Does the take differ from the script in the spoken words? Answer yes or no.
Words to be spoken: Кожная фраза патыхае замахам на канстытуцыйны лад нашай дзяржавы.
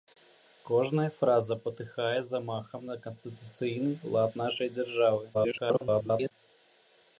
yes